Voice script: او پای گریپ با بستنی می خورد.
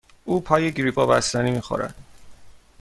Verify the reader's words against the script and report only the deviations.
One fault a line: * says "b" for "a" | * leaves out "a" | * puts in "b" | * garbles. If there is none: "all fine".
all fine